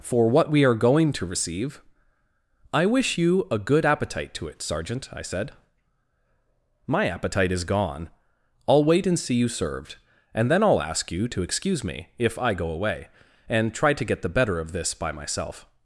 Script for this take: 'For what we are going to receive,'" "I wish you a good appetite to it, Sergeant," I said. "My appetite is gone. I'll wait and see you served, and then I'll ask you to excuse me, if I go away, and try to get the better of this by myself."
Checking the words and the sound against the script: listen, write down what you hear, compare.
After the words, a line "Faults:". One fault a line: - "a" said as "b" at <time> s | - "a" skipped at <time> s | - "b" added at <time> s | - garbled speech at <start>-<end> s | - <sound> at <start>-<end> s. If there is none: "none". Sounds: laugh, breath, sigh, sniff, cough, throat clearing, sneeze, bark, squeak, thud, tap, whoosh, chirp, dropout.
'For what we are going to receive,'" "I wish you a good appetite to it, Sergeant," I said. "My appetite is gone. I'll wait and see you served, and then I'll ask you to excuse me, if I go away, and try to get the better of this by myself."
Faults:
none